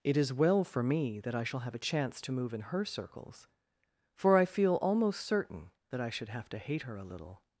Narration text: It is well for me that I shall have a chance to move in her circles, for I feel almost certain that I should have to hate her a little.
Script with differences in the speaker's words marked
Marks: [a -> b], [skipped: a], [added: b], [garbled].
It is well for me that I shall have a chance to move in her circles, for I feel almost certain that I should have to hate her a little.